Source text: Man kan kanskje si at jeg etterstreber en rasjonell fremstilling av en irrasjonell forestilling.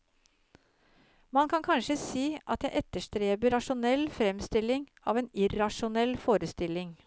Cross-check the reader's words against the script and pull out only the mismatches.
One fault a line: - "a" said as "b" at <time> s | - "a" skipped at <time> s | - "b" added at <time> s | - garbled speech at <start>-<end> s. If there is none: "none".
- "en" skipped at 3.5 s